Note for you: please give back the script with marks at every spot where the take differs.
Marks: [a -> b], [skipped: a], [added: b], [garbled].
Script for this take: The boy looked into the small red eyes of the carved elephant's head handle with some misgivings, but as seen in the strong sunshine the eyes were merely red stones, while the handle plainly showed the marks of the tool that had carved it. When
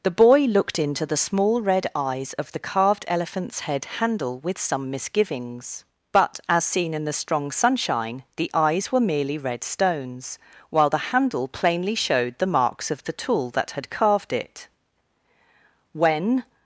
The boy looked into the small red eyes of the carved elephant's head handle with some misgivings, but as seen in the strong sunshine the eyes were merely red stones, while the handle plainly showed the marks of the tool that had carved it. When